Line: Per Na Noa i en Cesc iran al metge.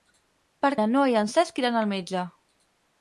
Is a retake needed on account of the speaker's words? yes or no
no